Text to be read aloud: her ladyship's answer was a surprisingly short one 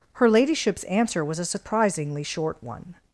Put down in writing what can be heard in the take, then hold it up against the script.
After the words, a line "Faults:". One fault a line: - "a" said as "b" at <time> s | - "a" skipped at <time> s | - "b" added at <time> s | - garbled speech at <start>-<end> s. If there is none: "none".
her ladyship's answer was a surprisingly short one
Faults:
none